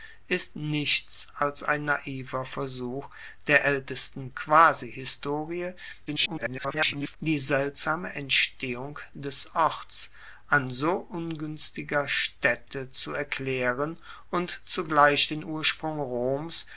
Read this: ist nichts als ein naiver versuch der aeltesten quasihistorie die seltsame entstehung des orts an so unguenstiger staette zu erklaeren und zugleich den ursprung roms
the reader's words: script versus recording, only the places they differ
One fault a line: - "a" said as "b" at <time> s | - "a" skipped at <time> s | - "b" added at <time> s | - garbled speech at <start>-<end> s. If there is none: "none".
- garbled speech at 6.1-7.2 s